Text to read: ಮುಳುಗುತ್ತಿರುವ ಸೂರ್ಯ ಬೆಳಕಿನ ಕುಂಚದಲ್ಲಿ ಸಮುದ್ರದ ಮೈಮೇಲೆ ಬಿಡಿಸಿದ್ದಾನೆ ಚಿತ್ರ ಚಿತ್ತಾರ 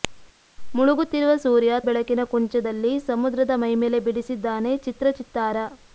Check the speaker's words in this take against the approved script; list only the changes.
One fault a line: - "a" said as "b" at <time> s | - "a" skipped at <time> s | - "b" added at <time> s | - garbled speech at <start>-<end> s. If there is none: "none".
none